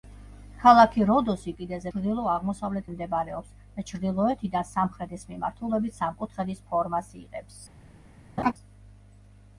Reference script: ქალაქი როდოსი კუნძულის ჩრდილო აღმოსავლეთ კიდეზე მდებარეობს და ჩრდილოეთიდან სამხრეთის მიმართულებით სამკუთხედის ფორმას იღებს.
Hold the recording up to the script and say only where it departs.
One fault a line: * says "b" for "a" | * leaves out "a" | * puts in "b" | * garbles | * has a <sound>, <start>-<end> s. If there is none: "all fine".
* says "კიდეზე" for "კუნძულის"
* leaves out "კიდეზე"
* has a laugh, 8.4-8.5 s